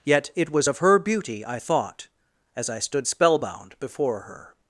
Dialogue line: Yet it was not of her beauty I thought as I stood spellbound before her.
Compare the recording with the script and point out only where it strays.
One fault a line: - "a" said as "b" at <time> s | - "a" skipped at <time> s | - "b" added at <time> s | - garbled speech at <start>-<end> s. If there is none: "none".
- "not" skipped at 0.7 s